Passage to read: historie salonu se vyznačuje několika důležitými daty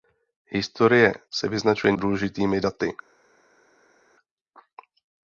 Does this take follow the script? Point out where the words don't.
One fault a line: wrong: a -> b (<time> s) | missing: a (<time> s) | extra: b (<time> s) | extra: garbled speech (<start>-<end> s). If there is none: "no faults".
missing: salonu (1.1 s)
missing: několika (1.9 s)